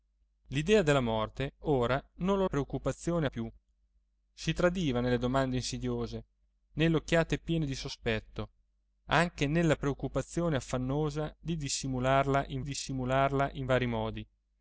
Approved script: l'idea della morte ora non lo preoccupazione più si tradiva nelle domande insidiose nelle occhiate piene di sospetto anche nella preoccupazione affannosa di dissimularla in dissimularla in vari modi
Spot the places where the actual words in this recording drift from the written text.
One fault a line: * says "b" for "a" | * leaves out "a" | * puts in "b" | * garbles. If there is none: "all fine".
all fine